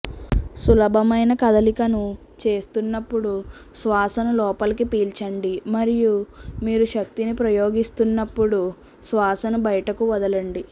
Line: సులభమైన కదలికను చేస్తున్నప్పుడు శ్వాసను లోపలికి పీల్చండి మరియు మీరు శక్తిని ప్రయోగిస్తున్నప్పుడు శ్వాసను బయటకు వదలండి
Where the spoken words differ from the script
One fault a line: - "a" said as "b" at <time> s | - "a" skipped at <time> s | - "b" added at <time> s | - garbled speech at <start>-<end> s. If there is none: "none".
none